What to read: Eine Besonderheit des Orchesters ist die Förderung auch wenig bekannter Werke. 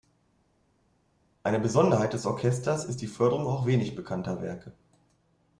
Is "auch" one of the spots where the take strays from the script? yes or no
no